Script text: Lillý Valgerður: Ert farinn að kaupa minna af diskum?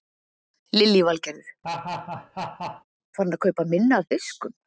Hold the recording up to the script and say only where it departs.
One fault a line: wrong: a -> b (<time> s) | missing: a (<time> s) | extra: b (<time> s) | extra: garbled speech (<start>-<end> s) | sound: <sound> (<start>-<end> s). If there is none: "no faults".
sound: laugh (1.6-2.8 s)